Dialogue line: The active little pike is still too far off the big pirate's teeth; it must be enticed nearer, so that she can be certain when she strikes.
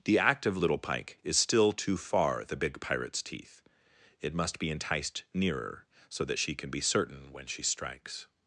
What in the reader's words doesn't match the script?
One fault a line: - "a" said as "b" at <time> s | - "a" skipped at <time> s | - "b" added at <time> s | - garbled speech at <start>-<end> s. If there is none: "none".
- "off" skipped at 2.4 s